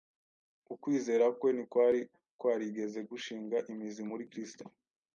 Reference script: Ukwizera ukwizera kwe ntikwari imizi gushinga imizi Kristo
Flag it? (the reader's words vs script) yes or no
yes